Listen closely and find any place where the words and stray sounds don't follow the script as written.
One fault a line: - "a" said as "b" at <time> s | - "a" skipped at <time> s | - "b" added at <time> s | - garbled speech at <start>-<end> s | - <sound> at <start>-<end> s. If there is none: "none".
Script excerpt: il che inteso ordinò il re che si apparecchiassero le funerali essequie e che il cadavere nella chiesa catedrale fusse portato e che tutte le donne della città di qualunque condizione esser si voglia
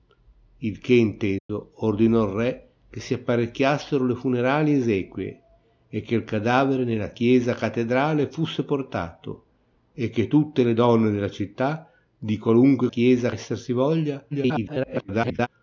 - dropout at 1.4-1.5 s
- "condizione" said as "chiesa" at 12.9 s
- garbled speech at 14.3-15.5 s